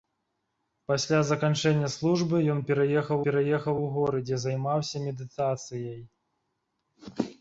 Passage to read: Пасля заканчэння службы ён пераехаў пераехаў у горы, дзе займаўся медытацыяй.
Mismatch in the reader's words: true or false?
false